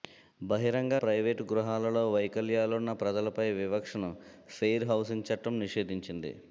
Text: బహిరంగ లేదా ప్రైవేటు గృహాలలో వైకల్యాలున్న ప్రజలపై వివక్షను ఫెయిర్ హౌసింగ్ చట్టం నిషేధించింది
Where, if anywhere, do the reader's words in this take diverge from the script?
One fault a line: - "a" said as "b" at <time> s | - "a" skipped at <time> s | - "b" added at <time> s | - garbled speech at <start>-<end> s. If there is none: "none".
- "లేదా" skipped at 0.9 s